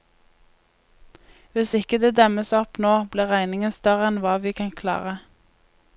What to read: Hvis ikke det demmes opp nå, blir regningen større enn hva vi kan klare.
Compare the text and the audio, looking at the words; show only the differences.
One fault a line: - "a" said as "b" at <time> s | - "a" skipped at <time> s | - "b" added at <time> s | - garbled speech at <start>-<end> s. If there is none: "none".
none